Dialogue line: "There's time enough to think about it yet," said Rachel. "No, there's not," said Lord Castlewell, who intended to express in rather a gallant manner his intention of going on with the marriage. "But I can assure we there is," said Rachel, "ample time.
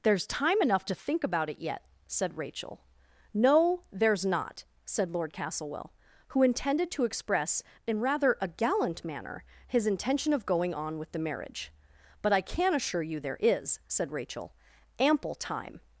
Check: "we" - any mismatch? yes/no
yes